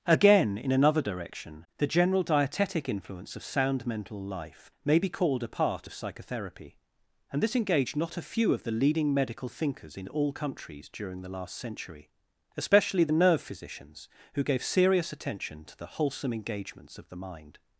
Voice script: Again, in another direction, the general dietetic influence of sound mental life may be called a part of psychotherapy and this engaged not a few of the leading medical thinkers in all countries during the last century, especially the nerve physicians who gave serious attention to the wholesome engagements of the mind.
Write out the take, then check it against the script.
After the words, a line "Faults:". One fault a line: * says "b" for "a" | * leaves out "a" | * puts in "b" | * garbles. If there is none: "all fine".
Again, in another direction, the general dietetic influence of sound mental life may be called a part of psychotherapy and this engaged not a few of the leading medical thinkers in all countries during the last century, especially the nerve physicians who gave serious attention to the wholesome engagements of the mind.
Faults:
all fine